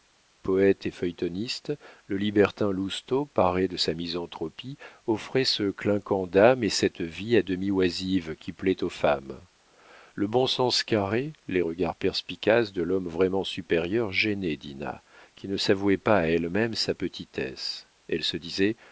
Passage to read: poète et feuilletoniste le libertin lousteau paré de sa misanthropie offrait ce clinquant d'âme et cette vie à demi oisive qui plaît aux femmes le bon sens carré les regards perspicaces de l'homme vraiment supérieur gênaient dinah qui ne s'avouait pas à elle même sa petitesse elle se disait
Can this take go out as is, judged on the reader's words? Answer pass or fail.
pass